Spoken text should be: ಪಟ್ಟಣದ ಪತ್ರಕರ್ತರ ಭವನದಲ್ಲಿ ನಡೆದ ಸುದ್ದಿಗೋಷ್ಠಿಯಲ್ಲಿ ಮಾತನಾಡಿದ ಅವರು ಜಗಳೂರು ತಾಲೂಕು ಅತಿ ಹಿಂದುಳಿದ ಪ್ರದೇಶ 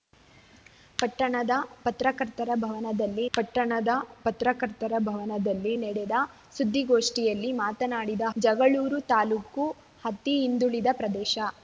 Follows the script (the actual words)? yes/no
no